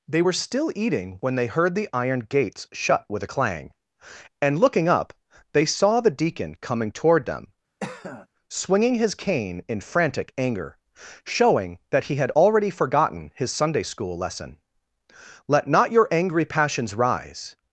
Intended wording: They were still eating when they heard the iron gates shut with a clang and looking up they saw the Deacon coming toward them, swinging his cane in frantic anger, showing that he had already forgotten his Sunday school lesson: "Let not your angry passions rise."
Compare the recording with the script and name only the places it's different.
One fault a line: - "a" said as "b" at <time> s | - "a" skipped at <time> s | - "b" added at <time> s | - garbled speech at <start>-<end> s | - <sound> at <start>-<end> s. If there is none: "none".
- cough at 7.8-8.3 s